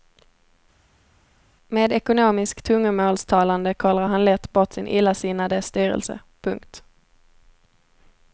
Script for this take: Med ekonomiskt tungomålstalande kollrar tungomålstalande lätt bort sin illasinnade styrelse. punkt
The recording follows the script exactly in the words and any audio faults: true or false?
false